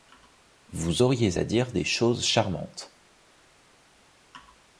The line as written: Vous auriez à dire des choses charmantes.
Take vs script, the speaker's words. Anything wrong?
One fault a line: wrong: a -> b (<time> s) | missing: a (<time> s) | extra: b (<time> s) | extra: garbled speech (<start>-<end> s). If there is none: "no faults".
no faults